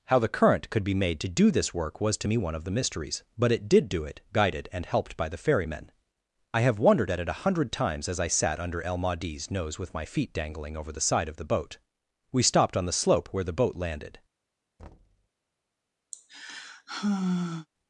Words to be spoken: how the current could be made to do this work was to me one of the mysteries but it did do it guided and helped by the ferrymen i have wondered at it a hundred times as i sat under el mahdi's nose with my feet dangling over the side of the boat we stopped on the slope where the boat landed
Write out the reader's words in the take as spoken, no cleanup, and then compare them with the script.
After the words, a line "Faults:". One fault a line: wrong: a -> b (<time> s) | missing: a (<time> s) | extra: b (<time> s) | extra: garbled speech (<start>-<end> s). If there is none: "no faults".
how the current could be made to do this work was to me one of the mysteries but it did do it guided and helped by the ferrymen i have wondered at it a hundred times as i sat under el mahdi's nose with my feet dangling over the side of the boat we stopped on the slope where the boat landed
Faults:
no faults